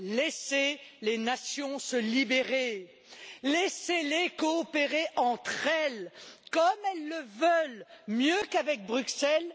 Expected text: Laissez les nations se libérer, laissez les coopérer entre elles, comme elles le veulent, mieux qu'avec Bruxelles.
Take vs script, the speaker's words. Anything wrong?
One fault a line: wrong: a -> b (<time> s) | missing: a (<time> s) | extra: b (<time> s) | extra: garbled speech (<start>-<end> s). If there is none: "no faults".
no faults